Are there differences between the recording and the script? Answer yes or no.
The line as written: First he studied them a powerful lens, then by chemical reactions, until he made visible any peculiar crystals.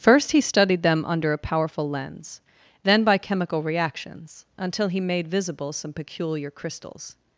yes